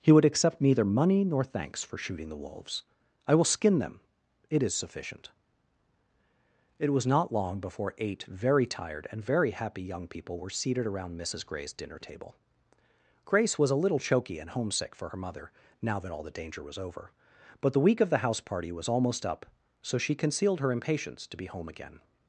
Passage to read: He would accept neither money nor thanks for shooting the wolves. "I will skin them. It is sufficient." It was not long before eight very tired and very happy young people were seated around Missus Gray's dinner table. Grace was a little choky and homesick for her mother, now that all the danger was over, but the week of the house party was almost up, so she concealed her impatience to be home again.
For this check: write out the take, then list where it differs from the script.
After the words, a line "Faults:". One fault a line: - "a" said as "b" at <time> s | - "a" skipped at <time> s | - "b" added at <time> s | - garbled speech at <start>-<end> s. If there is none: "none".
He would accept neither money nor thanks for shooting the wolves. "I will skin them. It is sufficient." It was not long before eight very tired and very happy young people were seated around Missus Gray's dinner table. Grace was a little choky and homesick for her mother, now that all the danger was over, but the week of the house party was almost up, so she concealed her impatience to be home again.
Faults:
none